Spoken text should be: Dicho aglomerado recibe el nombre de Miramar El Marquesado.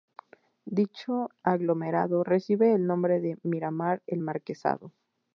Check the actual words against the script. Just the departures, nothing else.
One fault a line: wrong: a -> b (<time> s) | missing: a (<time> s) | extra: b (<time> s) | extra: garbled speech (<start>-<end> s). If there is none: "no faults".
no faults